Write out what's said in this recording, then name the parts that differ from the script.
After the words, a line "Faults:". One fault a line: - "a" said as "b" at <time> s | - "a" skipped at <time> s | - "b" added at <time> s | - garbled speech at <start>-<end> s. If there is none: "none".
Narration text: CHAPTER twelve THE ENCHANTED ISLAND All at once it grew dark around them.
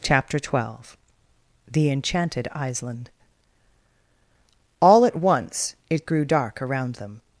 CHAPTER twelve THE ENCHANTED ISLAND All at once it grew dark around them.
Faults:
none